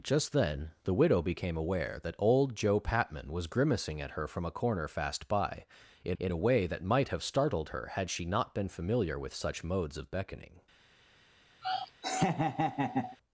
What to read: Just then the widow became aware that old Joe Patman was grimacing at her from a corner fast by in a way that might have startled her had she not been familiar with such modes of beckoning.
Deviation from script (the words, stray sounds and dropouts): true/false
true